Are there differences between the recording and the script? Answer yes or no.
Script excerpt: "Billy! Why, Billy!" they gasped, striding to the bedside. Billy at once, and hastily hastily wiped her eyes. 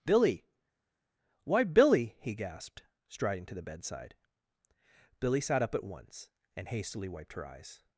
yes